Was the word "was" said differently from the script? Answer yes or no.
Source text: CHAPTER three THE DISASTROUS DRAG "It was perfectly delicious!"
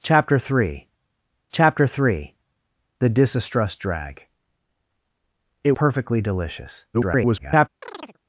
yes